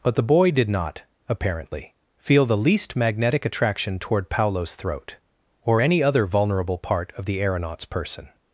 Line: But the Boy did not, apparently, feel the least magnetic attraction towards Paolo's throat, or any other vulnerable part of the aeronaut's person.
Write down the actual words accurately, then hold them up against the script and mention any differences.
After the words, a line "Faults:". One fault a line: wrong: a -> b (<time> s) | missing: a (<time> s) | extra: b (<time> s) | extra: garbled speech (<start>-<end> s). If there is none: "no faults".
But the Boy did not, apparently, feel the least magnetic attraction toward Paolo's throat, or any other vulnerable part of the aeronaut's person.
Faults:
wrong: towards -> toward (4.0 s)